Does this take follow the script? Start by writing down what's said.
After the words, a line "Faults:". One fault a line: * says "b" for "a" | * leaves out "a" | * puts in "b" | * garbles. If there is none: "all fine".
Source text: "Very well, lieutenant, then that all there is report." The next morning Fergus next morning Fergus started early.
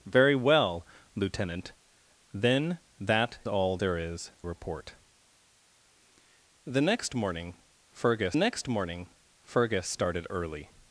"Very well, lieutenant, then that all there is report." The next morning Fergus next morning Fergus started early.
Faults:
all fine